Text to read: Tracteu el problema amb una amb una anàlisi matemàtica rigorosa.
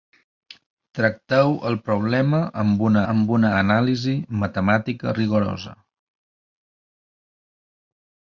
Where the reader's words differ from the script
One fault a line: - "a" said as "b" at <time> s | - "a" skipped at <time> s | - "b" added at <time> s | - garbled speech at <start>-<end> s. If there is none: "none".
none